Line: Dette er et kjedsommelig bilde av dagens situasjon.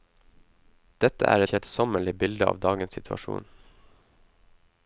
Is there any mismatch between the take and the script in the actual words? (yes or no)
yes